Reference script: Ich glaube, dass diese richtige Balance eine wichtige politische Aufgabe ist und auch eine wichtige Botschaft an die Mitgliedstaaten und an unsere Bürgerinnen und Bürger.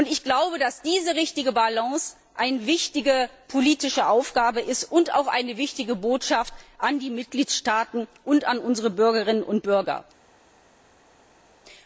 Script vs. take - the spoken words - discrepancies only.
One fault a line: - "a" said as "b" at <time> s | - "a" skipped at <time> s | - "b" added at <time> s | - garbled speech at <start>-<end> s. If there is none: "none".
none